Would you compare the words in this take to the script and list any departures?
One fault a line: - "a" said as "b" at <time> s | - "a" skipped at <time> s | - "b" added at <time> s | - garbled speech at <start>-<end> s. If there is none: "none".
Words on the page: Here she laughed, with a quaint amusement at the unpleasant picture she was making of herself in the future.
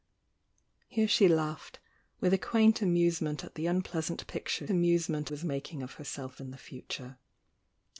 - "she" said as "amusement" at 4.7 s